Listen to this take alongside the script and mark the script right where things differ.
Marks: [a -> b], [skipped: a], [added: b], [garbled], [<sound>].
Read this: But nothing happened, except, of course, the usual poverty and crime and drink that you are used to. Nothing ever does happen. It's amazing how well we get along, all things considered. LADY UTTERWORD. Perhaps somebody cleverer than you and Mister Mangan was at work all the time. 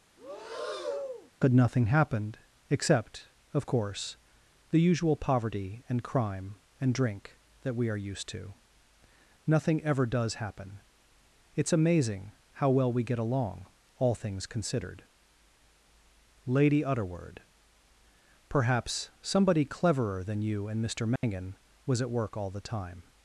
[breath] But nothing happened, except, of course, the usual poverty and crime and drink that [you -> we] are used to. Nothing ever does happen. It's amazing how well we get along, all things considered. LADY UTTERWORD. Perhaps somebody cleverer than you and Mister Mangan [dropout] was at work all the time.